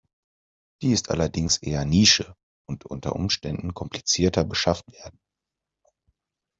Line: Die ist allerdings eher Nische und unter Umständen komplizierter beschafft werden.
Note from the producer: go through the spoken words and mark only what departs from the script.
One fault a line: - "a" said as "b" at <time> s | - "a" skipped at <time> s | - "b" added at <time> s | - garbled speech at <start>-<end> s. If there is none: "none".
none